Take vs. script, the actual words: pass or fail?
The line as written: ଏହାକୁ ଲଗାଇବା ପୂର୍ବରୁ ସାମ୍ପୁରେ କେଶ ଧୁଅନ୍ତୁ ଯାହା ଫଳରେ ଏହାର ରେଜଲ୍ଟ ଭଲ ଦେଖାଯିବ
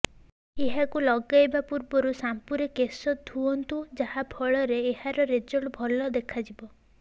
pass